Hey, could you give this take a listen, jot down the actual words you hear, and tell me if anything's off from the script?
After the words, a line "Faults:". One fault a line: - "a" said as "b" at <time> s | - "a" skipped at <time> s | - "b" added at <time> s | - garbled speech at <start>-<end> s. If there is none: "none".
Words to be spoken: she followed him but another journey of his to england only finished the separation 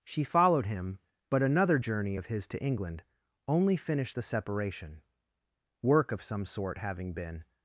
she followed him but another journey of his to england only finished the separation work of some sort having been
Faults:
- "work of some sort having been" added at 5.8 s